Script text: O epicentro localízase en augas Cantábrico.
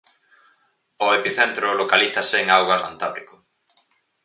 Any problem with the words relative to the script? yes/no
no